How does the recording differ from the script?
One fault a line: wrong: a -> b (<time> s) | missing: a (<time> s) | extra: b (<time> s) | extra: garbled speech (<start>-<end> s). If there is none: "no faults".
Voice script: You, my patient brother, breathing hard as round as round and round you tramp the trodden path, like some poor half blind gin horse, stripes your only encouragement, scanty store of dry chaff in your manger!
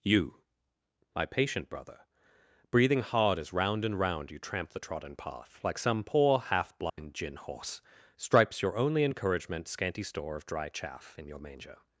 missing: as round (3.9 s)